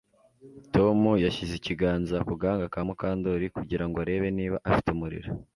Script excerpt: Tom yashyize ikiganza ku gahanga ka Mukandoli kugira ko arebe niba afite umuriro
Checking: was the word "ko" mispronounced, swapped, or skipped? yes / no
yes